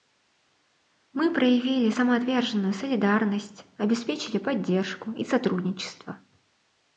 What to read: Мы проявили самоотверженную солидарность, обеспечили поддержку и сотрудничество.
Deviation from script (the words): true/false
false